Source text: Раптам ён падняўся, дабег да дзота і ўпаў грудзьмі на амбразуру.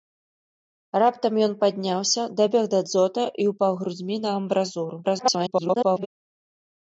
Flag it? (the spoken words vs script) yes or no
yes